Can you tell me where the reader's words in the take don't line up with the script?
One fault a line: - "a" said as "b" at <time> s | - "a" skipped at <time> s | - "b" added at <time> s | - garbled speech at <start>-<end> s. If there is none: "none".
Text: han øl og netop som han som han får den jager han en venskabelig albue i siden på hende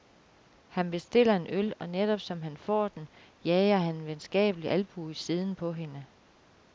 - "bestiller en" added at 0.9 s
- "som han" skipped at 2.6 s